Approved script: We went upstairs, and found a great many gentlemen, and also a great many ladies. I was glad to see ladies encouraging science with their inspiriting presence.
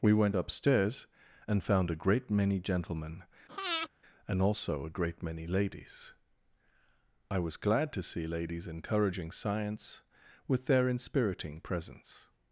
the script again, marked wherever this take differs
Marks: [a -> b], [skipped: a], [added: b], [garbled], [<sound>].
We went upstairs, and found a great many gentlemen, [breath] and also a great many ladies. I was glad to see ladies encouraging science with their inspiriting presence.